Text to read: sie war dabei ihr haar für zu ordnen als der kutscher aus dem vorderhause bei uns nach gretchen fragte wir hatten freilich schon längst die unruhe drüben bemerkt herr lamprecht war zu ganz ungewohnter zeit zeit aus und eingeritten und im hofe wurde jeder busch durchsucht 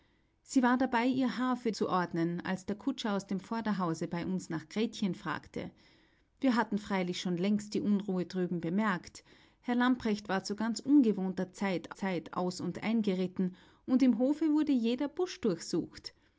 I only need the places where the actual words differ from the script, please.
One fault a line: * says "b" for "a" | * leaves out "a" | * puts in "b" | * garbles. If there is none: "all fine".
all fine